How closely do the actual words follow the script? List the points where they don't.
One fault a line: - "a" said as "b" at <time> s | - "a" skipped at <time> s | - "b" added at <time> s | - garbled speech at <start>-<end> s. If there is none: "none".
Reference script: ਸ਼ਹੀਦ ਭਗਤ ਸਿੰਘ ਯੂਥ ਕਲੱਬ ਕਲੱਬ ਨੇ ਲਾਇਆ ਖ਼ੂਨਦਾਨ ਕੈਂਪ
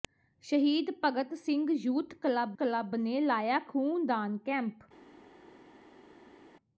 none